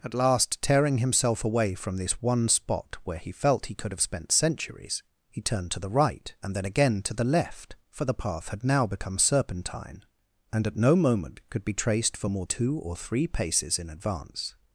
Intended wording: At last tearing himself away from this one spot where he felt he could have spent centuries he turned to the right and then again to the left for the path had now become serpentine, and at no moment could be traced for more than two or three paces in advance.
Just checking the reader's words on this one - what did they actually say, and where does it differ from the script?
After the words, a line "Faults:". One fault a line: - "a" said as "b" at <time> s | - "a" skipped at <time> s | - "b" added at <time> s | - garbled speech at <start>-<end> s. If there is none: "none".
At last tearing himself away from this one spot where he felt he could have spent centuries he turned to the right and then again to the left for the path had now become serpentine, and at no moment could be traced for more two or three paces in advance.
Faults:
- "than" skipped at 12.5 s